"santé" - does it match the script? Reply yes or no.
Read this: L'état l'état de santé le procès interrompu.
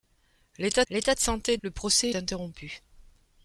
yes